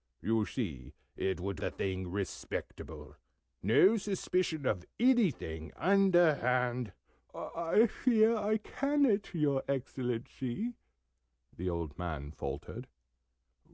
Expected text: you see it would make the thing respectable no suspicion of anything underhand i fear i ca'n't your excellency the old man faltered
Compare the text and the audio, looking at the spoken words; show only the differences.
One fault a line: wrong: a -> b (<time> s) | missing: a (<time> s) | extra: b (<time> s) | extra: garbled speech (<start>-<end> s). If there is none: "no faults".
missing: make (1.6 s)